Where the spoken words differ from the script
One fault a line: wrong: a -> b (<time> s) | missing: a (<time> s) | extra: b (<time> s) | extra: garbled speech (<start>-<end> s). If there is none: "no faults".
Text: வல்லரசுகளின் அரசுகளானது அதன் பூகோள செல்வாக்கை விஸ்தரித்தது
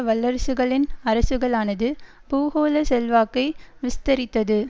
missing: அதன் (1.9 s)